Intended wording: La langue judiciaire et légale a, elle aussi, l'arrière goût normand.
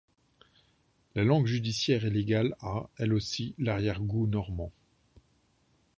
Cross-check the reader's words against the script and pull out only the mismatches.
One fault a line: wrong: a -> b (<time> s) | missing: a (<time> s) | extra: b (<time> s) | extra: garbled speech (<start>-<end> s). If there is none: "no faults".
no faults